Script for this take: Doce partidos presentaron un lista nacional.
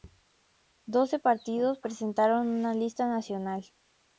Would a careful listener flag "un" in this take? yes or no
yes